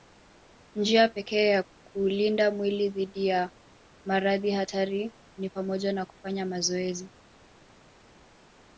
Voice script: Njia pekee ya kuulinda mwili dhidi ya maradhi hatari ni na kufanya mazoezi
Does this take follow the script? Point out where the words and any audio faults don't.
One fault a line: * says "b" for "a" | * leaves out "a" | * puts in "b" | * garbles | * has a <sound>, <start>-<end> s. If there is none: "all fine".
* puts in "pamoja"